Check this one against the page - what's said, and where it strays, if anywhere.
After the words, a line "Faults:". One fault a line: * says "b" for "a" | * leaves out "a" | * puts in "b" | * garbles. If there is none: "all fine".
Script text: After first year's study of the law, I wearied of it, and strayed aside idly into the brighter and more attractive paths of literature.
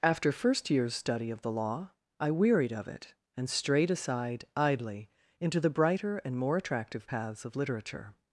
After first year's study of the law, I wearied of it, and strayed aside idly into the brighter and more attractive paths of literature.
Faults:
all fine